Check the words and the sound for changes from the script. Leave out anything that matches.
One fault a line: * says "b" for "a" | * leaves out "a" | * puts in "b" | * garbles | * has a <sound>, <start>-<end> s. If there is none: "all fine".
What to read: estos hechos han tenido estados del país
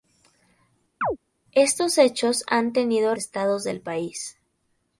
* has a chirp, 1.0-1.2 s